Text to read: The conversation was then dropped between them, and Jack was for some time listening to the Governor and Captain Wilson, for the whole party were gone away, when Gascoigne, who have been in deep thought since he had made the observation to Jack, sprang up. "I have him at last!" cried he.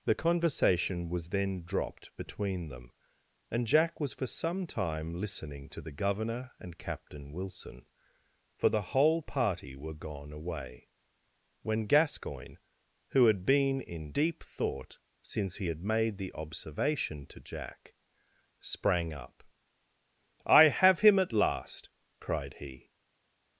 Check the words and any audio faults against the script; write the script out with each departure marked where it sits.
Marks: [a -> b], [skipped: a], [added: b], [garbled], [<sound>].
The conversation was then dropped between them, and Jack was for some time listening to the Governor and Captain Wilson, for the whole party were gone away, when Gascoigne, who [have -> had] been in deep thought since he had made the observation to Jack, sprang up. "I have him at last!" cried he.